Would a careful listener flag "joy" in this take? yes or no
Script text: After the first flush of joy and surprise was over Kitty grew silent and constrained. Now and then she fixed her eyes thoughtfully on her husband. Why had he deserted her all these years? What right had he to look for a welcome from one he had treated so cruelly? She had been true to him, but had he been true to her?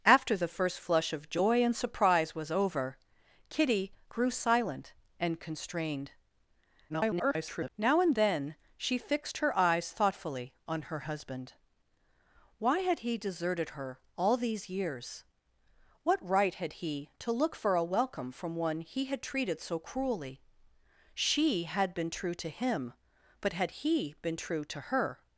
no